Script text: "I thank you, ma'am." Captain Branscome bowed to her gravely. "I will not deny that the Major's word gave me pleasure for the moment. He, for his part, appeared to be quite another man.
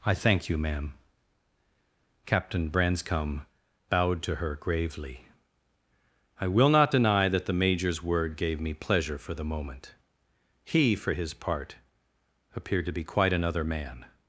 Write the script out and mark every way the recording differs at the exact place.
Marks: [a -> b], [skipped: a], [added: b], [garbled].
"I thank you, ma'am." Captain Branscome bowed to her gravely. "I will not deny that the Major's word gave me pleasure for the moment. He, for his part, appeared to be quite another man.